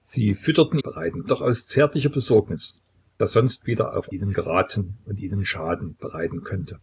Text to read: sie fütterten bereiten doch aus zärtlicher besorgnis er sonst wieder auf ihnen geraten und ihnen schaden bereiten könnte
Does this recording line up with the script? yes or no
yes